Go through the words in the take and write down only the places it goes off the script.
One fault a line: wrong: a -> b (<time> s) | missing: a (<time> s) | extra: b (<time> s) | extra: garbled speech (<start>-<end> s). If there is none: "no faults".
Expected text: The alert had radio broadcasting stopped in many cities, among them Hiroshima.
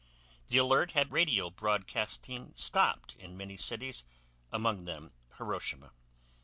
no faults